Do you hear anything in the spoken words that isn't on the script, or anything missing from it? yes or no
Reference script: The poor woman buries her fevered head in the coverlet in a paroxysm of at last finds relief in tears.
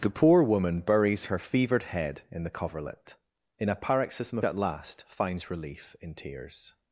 no